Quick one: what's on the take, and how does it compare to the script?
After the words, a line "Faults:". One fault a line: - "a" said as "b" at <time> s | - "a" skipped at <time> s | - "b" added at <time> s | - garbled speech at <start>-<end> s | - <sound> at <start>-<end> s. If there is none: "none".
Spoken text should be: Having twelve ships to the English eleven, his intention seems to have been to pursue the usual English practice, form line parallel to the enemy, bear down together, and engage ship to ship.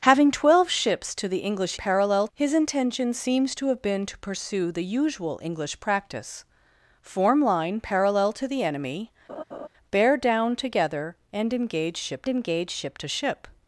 Having twelve ships to the English parallel, his intention seems to have been to pursue the usual English practice, form line parallel to the enemy, bear down together, and engage ship engage ship to ship.
Faults:
- "eleven" said as "parallel" at 1.7 s
- laugh at 9.3-9.7 s
- "engage ship" added at 12.3 s